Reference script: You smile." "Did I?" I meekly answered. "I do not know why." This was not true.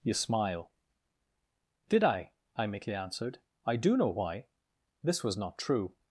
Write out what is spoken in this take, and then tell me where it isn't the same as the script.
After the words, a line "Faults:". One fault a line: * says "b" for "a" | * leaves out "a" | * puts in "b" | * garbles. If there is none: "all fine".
You smile." "Did I?" I meekly answered. "I do know why." This was not true.
Faults:
* leaves out "not"